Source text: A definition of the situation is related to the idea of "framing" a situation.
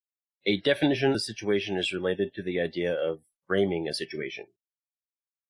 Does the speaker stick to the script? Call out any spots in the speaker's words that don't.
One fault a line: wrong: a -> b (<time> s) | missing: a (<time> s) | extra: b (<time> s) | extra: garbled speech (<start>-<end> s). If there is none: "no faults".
missing: of (1.1 s)